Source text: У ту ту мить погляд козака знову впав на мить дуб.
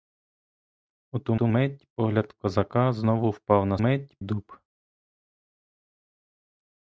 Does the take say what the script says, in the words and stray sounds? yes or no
yes